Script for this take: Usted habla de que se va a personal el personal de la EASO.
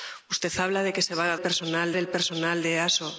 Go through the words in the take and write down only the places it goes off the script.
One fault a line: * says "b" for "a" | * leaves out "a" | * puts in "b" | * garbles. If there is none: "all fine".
all fine